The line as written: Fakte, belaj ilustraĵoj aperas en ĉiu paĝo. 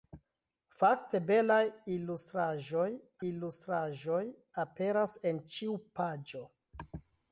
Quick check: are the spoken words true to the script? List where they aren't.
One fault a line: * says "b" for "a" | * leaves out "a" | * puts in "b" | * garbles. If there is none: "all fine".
* puts in "ilustraĵoj"